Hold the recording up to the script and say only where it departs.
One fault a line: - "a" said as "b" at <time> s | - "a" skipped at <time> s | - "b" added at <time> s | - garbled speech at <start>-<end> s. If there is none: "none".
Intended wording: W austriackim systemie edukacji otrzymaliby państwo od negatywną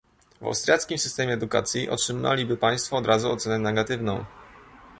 - "razu ocenę" added at 3.1 s